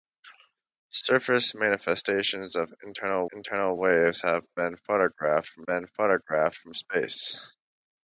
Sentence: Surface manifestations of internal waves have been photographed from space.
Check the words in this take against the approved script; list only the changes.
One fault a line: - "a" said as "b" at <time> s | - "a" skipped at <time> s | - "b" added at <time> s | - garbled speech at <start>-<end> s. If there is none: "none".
- "internal" added at 3.3 s
- "been photographed from" added at 5.7 s